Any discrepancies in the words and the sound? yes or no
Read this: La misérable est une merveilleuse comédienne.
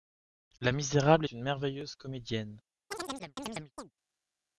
yes